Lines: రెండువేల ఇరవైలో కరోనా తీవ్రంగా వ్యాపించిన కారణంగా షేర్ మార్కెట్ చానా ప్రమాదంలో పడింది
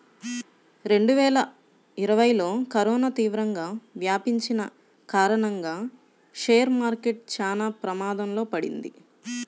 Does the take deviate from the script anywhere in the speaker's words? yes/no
no